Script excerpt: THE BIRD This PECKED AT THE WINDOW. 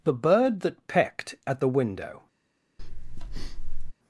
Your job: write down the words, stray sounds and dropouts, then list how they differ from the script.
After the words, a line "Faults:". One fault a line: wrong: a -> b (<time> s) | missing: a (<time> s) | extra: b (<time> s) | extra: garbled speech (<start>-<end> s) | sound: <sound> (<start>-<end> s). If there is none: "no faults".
THE BIRD THAT PECKED AT THE WINDOW.
Faults:
wrong: This -> THAT (0.6 s)
sound: breath (2.8-3.9 s)